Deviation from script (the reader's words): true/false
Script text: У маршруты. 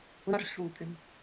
false